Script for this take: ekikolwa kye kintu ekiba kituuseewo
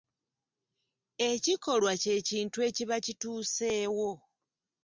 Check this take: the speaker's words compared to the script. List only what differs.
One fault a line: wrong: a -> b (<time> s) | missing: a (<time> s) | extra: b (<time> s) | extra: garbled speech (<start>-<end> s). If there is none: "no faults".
no faults